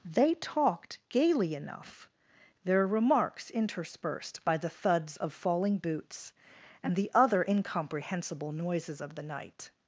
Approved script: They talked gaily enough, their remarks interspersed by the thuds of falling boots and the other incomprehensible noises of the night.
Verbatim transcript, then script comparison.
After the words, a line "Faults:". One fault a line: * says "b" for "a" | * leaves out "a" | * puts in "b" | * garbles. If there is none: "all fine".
They talked gaily enough, their remarks interspersed by the thuds of falling boots and the other incomprehensible noises of the night.
Faults:
all fine